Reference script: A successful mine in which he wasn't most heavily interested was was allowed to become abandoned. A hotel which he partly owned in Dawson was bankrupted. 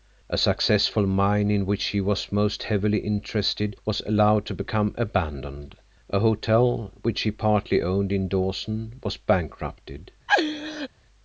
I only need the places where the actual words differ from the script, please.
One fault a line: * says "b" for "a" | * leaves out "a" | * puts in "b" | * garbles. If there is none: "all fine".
* says "was" for "wasn't"
* leaves out "was"